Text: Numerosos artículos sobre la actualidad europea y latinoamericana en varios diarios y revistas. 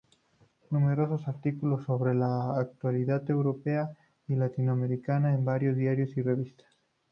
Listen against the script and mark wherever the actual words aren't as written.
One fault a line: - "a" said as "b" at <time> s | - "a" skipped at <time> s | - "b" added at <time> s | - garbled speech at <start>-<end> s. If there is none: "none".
none